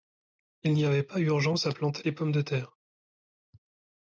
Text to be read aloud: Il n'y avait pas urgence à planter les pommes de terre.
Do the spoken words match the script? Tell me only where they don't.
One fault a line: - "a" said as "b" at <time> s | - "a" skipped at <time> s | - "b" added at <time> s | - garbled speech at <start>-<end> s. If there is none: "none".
none